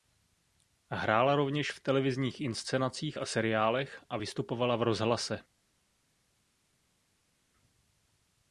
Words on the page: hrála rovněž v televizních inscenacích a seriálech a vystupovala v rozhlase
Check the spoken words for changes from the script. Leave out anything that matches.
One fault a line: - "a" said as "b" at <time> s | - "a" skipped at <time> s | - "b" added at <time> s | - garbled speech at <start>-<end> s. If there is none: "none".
none